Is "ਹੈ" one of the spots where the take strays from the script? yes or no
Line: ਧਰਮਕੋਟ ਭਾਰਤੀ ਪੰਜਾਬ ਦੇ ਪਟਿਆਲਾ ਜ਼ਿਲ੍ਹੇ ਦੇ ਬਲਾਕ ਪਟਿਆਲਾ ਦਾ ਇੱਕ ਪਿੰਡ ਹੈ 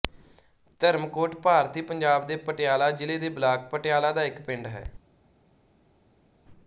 no